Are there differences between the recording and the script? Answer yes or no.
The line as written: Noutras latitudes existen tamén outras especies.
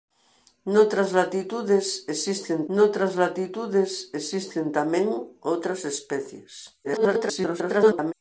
yes